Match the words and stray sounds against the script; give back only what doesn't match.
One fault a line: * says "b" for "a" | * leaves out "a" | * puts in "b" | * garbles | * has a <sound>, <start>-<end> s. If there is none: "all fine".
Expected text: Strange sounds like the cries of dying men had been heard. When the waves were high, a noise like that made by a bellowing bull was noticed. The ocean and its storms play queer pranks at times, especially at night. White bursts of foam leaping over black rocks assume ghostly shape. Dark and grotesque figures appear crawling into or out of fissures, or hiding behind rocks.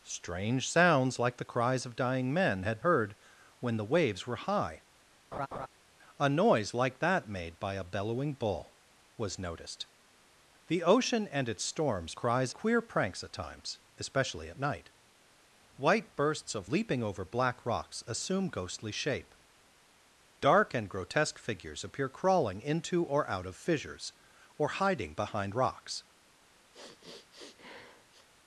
* leaves out "been"
* has a laugh, 5.3-5.7 s
* says "cries" for "play"
* leaves out "foam"
* has a sniff, 26.7-28.3 s